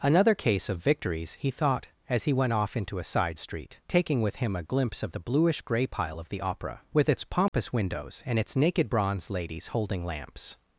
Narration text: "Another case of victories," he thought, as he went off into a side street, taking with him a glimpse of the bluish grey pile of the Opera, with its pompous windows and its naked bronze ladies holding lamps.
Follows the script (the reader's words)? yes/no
yes